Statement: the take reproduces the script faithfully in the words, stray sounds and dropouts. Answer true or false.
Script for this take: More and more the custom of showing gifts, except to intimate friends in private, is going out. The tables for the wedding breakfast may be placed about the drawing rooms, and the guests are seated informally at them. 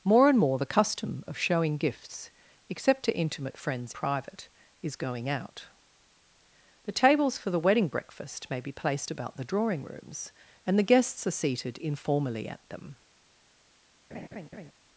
false